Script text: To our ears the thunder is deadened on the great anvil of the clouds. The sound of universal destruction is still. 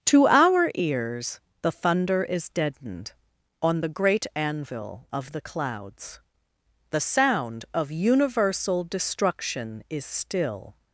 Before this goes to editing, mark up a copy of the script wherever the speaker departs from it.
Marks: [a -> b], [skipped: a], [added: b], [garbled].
To our ears the thunder is deadened on the great anvil of the clouds. The sound of universal destruction is still.